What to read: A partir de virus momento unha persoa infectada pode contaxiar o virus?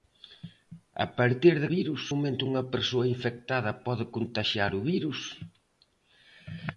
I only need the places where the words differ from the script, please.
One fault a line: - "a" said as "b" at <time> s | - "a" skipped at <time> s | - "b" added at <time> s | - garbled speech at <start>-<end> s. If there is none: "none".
none